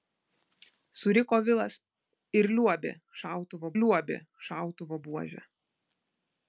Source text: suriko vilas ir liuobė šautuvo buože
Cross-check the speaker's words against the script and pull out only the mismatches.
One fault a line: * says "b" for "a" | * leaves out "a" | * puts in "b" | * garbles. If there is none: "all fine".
* puts in "liuobė šautuvo"